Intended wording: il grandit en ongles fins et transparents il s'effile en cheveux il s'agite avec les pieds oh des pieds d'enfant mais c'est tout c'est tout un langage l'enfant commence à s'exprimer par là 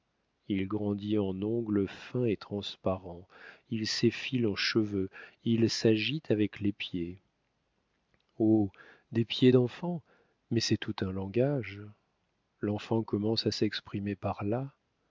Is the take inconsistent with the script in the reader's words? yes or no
yes